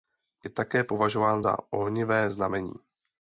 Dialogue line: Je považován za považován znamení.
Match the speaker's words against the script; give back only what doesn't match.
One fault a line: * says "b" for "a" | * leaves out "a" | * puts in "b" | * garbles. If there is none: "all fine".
* puts in "také"
* says "ohnivé" for "považován"